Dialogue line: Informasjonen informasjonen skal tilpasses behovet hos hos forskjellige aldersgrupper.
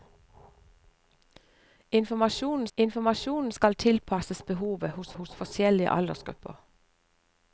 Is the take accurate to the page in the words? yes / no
yes